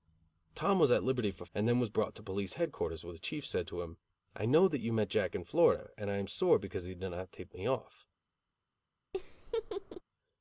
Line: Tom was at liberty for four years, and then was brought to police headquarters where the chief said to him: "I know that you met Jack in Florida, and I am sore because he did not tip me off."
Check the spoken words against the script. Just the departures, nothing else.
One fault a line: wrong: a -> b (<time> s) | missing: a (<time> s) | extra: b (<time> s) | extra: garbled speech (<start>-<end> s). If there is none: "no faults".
missing: four years (1.4 s)